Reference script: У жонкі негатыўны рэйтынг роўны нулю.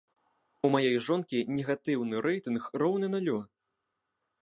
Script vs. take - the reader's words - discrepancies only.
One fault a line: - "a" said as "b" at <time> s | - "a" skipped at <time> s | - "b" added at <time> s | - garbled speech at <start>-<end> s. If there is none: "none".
- "маёй" added at 0.8 s